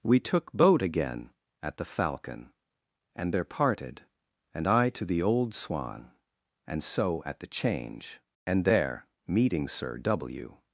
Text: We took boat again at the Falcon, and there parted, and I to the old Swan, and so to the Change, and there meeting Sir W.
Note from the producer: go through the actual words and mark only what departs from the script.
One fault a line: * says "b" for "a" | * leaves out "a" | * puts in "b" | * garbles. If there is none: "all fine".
* says "at" for "to"